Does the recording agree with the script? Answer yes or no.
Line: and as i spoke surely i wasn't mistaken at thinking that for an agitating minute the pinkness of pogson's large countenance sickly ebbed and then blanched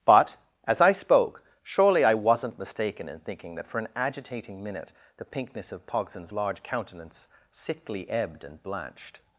no